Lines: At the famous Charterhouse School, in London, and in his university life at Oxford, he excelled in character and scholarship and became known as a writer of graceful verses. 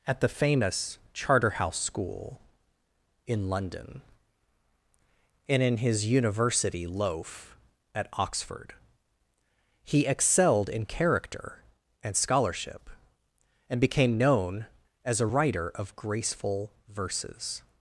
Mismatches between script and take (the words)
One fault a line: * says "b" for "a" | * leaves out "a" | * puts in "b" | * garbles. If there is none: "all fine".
* says "loaf" for "life"